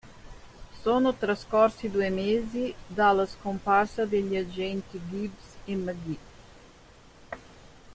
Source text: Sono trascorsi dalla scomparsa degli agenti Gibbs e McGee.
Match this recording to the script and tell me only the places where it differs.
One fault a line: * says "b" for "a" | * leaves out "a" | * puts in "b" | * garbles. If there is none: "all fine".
* puts in "due mesi"